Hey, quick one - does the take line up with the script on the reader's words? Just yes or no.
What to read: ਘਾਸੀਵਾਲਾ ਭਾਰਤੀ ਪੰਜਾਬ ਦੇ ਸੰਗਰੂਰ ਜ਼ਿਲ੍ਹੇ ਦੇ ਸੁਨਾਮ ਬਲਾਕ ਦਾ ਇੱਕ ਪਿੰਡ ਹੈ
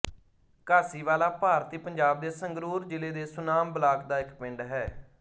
yes